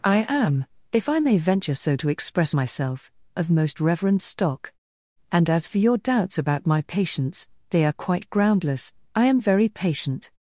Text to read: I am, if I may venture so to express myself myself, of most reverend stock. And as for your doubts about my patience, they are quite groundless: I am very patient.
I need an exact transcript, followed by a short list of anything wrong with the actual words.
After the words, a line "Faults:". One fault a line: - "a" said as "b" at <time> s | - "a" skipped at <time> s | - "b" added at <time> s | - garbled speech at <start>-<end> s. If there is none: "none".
I am, if I may venture so to express myself, of most reverend stock. And as for your doubts about my patience, they are quite groundless: I am very patient.
Faults:
- "myself" skipped at 3.1 s